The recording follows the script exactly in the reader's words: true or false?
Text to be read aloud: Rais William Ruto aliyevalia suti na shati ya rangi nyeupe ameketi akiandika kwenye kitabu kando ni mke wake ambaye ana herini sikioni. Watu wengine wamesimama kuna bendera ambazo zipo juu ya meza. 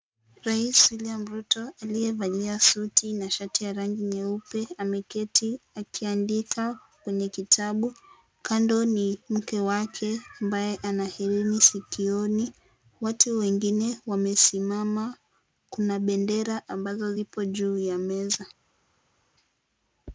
true